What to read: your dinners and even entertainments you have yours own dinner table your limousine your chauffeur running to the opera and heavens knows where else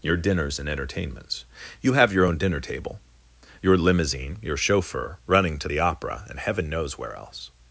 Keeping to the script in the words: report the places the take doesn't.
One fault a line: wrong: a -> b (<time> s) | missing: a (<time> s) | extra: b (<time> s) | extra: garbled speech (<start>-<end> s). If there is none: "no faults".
missing: even (0.7 s)
wrong: yours -> your (2.1 s)
wrong: heavens -> heaven (6.4 s)